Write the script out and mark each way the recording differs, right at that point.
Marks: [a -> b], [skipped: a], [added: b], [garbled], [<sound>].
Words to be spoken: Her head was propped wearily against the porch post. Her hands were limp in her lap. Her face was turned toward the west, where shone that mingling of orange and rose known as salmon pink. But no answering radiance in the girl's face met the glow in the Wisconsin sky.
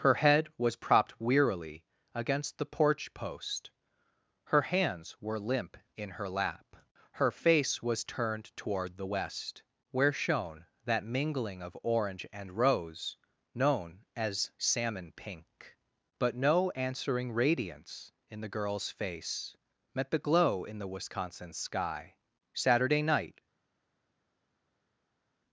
Her head was propped wearily against the porch post. Her hands were limp in her lap. Her face was turned toward the west, where shone that mingling of orange and rose known as salmon pink. But no answering radiance in the girl's face met the glow in the Wisconsin sky. [added: Saturday night]